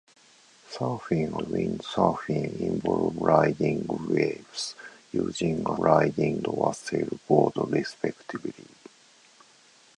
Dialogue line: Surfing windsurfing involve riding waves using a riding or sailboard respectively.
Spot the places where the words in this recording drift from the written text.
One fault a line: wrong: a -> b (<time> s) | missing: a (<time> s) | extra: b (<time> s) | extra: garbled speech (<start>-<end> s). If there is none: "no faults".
no faults